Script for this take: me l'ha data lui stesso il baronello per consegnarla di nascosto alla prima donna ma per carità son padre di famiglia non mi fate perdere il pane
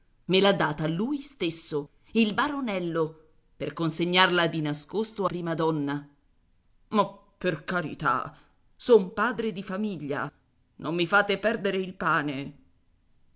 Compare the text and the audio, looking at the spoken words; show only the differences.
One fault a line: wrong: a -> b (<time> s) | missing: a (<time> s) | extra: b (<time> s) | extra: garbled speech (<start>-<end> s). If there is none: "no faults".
missing: alla (5.3 s)